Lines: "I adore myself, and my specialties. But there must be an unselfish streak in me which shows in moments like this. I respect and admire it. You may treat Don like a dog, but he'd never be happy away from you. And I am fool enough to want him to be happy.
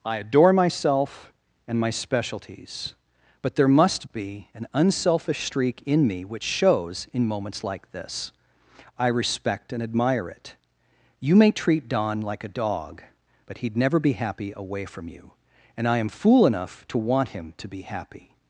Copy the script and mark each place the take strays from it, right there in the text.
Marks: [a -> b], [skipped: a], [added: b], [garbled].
"I adore myself, and my specialties. But there must be an unselfish streak in me which shows in moments like this. I respect and admire it. You may treat Don like a dog, but he'd never be happy away from you. And I am fool enough to want him to be happy.